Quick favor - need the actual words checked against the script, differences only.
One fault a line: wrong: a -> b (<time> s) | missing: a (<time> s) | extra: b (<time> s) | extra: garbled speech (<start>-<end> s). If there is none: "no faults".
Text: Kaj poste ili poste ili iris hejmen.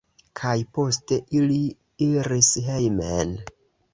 missing: poste ili (1.6 s)